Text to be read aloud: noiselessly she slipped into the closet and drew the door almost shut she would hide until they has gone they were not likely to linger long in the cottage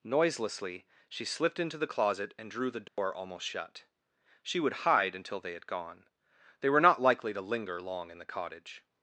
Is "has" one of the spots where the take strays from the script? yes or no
yes